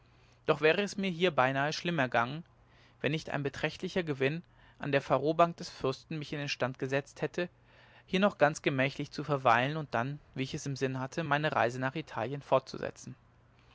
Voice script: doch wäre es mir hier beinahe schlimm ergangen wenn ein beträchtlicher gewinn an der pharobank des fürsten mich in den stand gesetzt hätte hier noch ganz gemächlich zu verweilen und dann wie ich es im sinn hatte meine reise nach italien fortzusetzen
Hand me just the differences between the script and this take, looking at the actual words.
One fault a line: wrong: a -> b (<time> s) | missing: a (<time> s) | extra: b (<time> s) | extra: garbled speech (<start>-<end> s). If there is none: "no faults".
extra: nicht (3.1 s)